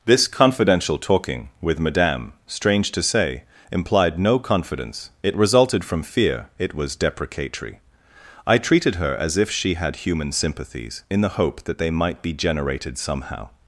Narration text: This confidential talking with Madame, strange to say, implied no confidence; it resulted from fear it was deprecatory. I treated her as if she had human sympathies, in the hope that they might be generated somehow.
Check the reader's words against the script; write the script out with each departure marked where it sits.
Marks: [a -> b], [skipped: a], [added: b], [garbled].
This confidential talking with Madame, strange to say, implied no confidence; it resulted from fear it was deprecatory. I treated her as if she had human sympathies, in the hope that they might be generated somehow.